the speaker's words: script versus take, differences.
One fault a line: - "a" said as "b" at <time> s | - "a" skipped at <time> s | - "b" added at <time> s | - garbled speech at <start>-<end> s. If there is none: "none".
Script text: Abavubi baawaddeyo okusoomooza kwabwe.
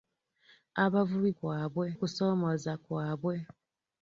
- "baawaddeyo" said as "kwabwe" at 1.4 s